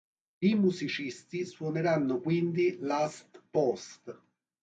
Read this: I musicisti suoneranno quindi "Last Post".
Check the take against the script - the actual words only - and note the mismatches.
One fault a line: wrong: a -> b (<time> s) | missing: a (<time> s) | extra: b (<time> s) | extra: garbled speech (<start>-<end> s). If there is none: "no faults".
no faults